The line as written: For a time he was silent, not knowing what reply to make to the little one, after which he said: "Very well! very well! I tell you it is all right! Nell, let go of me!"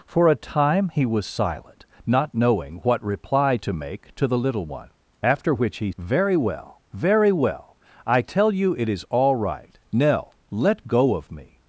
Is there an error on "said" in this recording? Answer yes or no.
yes